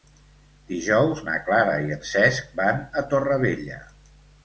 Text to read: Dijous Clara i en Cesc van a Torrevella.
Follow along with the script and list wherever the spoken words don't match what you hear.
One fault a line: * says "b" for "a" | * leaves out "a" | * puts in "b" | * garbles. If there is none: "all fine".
* puts in "na"